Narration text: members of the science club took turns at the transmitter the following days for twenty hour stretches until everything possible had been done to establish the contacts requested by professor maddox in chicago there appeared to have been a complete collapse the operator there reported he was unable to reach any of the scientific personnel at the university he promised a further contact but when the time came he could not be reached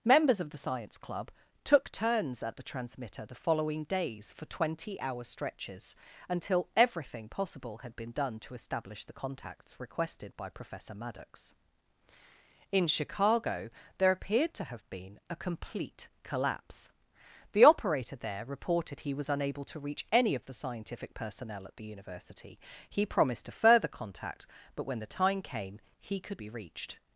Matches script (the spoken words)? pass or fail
fail